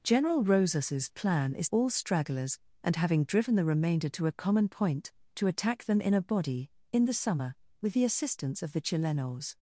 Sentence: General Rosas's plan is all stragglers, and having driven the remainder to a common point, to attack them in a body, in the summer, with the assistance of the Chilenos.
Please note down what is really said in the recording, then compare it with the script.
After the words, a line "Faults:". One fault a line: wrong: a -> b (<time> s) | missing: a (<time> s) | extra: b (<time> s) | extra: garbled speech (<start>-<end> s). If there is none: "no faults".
General Rosas's plan is all stragglers, and having driven the remainder to a common point, to attack them in a body, in the summer, with the assistance of the Chilenos.
Faults:
no faults